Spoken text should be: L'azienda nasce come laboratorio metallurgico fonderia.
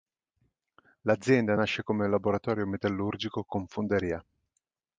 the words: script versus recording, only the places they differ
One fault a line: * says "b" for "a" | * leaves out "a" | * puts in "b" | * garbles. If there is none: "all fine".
* puts in "con"